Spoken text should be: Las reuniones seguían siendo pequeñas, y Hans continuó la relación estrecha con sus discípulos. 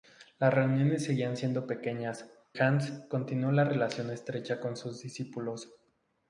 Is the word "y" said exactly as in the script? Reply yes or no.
no